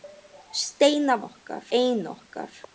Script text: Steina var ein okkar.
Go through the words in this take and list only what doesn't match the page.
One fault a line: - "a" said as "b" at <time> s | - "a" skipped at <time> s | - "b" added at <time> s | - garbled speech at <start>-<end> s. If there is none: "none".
- "var" said as "okkar" at 1.2 s